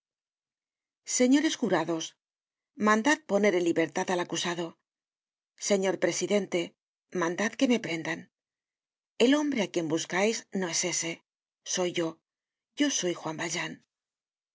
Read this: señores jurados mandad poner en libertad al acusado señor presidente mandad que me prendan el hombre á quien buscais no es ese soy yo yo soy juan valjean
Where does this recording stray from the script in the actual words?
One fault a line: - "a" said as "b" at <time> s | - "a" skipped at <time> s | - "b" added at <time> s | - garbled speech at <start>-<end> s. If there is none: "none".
none